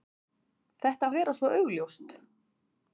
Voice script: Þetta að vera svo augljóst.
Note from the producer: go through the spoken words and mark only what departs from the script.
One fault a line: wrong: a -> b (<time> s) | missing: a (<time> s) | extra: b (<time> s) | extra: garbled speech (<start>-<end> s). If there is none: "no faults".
no faults